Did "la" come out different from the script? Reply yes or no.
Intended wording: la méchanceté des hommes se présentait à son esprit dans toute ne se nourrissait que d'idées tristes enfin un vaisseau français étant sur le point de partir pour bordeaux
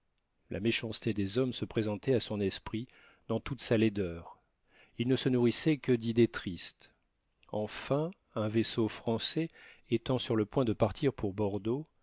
no